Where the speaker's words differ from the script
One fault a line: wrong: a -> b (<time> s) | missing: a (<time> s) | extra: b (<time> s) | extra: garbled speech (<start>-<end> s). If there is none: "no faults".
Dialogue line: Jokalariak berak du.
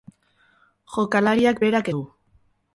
no faults